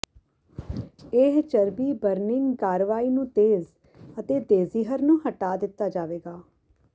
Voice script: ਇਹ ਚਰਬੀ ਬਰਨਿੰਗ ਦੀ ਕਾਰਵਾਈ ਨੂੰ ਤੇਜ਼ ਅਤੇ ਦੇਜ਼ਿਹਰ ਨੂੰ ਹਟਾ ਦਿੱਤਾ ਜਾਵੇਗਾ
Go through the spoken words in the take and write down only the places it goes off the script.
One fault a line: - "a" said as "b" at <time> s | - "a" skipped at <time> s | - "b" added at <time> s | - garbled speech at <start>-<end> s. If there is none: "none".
- "ਦੀ" skipped at 2.5 s